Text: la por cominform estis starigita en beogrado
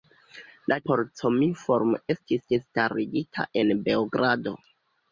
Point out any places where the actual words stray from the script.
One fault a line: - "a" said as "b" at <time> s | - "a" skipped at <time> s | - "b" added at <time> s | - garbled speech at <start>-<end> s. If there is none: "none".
none